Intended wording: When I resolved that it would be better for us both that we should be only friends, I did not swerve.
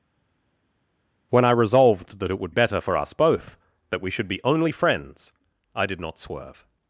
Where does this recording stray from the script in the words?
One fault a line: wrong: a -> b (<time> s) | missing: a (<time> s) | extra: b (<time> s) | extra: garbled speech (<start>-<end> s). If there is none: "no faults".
missing: be (2.5 s)